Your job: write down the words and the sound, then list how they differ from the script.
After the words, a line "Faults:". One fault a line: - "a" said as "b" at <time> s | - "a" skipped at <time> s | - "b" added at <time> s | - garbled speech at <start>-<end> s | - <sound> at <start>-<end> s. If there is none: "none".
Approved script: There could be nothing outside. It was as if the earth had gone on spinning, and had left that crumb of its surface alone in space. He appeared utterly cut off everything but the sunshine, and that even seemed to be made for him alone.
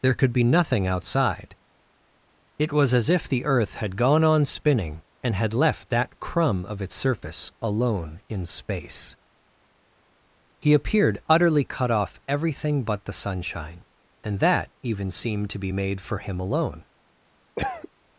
There could be nothing outside. It was as if the earth had gone on spinning, and had left that crumb of its surface alone in space. He appeared utterly cut off everything but the sunshine, and that even seemed to be made for him alone.
Faults:
- cough at 17.6-17.9 s